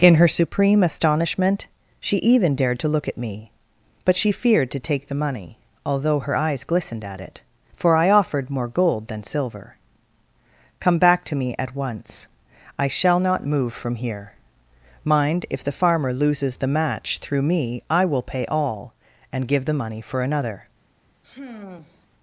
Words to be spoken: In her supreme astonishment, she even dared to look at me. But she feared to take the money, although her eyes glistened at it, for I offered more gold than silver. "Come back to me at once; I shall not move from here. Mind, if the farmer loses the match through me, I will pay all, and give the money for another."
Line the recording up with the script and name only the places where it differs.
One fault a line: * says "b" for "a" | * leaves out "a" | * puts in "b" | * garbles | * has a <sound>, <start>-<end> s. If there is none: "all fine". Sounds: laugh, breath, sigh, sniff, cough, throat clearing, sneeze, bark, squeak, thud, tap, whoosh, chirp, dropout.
* has a sigh, 21.2-22.1 s